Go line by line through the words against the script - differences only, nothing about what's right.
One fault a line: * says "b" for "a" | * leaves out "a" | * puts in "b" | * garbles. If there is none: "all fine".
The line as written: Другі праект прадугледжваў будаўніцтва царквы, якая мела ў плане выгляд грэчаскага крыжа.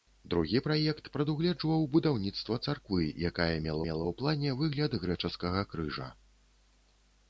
* puts in "мела"